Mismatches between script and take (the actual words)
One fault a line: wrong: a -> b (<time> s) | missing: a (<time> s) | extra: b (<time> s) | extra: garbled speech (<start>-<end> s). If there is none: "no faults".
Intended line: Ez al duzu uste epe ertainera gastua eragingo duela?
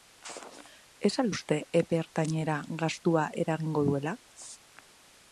missing: duzu (1.3 s)